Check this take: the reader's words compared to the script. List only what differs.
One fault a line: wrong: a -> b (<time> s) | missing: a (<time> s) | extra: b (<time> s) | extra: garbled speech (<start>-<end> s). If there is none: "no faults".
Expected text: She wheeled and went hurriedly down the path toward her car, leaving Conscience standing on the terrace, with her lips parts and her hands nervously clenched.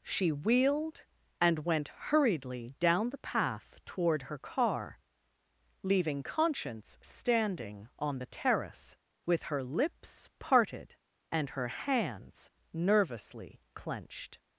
wrong: parts -> parted (10.4 s)